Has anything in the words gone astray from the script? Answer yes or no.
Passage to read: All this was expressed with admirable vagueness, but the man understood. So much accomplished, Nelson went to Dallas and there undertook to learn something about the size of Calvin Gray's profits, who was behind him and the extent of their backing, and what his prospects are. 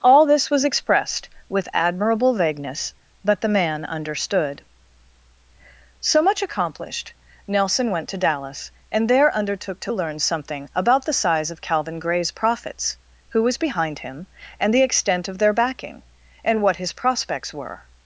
yes